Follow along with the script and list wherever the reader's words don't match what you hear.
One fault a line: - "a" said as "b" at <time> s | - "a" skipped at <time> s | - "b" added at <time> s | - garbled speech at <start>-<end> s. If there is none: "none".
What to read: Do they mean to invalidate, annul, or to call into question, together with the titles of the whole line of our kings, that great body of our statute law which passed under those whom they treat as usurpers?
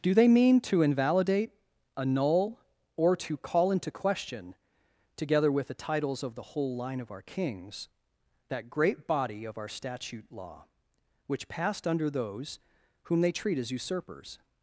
none